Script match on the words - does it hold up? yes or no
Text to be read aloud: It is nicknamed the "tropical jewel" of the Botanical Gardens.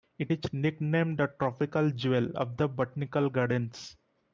yes